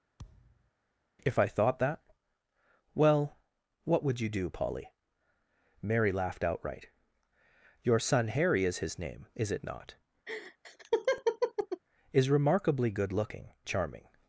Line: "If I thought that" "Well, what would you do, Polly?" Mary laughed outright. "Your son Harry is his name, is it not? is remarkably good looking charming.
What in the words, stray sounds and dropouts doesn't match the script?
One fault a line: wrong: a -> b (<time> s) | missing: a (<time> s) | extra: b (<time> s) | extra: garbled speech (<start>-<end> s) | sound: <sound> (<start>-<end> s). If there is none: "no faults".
sound: thud (0.2-0.7 s)
sound: laugh (10.3-11.8 s)